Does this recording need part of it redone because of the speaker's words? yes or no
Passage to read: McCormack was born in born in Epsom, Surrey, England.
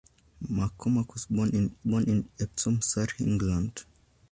no